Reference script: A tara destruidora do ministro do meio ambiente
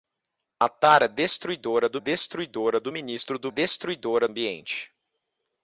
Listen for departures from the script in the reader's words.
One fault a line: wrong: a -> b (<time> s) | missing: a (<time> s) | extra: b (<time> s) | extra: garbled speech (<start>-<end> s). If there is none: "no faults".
extra: destruidora do (2.0 s)
wrong: meio -> destruidora (3.5 s)